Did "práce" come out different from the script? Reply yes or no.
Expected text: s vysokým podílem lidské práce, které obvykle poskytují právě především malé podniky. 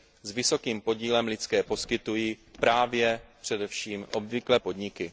yes